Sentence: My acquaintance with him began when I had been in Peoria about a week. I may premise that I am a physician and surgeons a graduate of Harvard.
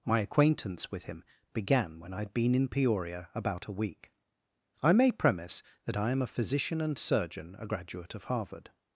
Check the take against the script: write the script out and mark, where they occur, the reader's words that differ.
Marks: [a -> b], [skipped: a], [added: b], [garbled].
My acquaintance with him began when I had been in Peoria about a week. I may premise that I am a physician and [surgeons -> surgeon] a graduate of Harvard.